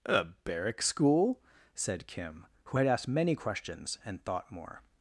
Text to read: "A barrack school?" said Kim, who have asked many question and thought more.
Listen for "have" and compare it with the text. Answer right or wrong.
wrong